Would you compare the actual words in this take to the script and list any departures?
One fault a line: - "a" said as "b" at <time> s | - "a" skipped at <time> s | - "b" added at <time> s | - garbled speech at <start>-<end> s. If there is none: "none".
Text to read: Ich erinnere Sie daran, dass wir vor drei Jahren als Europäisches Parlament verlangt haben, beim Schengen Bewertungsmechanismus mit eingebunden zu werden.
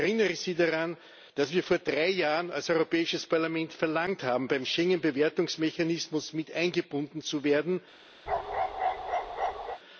none